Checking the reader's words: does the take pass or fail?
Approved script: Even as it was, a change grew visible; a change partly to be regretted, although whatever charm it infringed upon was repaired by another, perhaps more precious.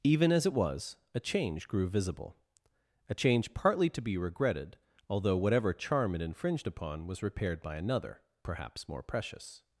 pass